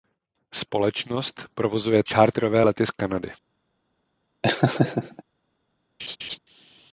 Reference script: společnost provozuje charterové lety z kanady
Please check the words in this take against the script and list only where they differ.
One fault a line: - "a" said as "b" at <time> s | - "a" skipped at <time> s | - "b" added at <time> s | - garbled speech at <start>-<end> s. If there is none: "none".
none